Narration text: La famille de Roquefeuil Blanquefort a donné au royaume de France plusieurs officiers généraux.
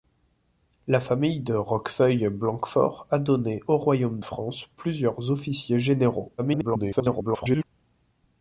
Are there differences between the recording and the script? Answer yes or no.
yes